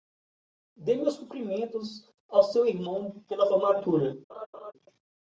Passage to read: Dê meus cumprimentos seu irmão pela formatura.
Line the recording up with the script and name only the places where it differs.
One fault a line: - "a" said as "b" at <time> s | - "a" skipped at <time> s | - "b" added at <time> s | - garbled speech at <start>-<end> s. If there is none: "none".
- "ao" added at 2.3 s